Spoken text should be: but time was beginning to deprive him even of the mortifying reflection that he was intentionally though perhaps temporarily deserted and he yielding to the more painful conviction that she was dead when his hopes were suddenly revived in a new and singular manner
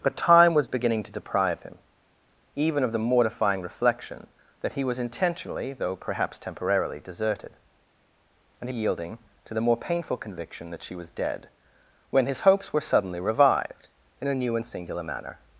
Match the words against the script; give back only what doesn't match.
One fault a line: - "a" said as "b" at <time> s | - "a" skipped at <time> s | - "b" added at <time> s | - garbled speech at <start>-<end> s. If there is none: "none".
none